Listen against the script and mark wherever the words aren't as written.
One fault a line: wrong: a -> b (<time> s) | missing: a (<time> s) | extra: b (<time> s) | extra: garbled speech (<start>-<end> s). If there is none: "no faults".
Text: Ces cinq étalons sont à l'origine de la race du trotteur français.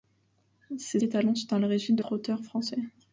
missing: cinq (1.0 s)
missing: la race du (2.0 s)